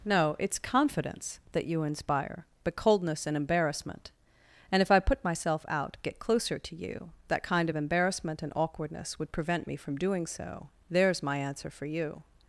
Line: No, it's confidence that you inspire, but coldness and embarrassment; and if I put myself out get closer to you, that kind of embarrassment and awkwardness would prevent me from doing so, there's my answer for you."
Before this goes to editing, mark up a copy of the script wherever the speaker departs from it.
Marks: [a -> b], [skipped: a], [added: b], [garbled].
No, it's confidence that you inspire, but coldness and embarrassment; and if I put myself out get closer to you, that kind of embarrassment and awkwardness would prevent me from doing so, there's my answer for you."